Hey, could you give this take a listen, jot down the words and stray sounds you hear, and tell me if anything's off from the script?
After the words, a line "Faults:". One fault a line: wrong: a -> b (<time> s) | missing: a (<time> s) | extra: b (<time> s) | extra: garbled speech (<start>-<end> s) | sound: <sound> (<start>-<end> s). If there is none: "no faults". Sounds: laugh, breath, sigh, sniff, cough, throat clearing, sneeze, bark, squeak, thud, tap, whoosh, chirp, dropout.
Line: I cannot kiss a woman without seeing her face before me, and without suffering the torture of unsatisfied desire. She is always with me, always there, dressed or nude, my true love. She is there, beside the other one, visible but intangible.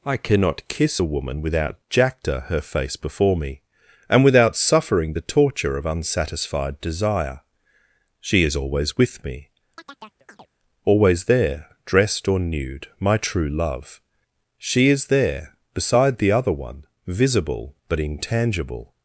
I cannot kiss a woman without jacta her face before me, and without suffering the torture of unsatisfied desire. She is always with me, always there, dressed or nude, my true love. She is there, beside the other one, visible but intangible.
Faults:
wrong: seeing -> jacta (1.9 s)
sound: chirp (9.8-10.5 s)